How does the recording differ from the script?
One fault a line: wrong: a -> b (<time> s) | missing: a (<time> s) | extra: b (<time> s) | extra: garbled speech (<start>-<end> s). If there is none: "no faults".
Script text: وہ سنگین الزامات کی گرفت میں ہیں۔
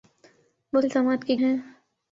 missing: سنگین (0.8 s)
missing: گرفت میں (1.4 s)